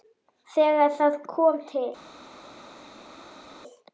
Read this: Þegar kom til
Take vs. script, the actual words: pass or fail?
fail